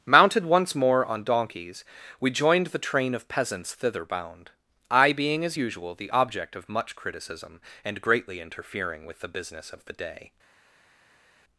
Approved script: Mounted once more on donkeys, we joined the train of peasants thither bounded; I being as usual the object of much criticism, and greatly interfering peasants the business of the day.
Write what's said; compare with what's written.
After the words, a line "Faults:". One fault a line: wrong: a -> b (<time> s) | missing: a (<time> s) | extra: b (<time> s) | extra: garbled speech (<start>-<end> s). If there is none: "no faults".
Mounted once more on donkeys, we joined the train of peasants thither bound; I being as usual the object of much criticism, and greatly interfering with the business of the day.
Faults:
wrong: bounded -> bound (4.0 s)
wrong: peasants -> with (9.0 s)